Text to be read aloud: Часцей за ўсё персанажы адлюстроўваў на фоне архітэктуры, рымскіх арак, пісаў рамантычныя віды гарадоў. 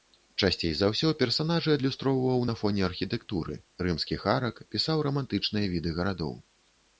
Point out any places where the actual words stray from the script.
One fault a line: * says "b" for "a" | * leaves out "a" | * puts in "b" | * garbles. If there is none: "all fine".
all fine